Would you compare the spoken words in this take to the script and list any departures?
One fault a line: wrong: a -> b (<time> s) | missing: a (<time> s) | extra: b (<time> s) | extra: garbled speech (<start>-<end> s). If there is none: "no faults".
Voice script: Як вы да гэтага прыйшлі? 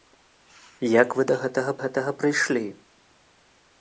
extra: гэтага (1.8 s)